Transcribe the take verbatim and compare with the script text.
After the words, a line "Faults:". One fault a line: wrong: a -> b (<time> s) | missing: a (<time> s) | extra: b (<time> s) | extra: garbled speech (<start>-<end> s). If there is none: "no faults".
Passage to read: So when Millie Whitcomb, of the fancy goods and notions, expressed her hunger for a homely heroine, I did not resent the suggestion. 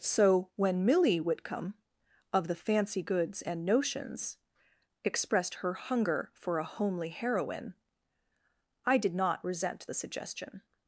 So when Millie Whitcomb, of the fancy goods and notions, expressed her hunger for a homely heroine, I did not resent the suggestion.
Faults:
no faults